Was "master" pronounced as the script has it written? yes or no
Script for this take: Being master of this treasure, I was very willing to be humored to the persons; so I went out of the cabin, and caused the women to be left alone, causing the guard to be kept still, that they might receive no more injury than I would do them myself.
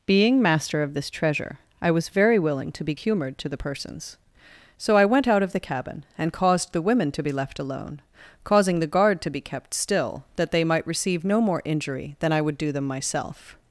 yes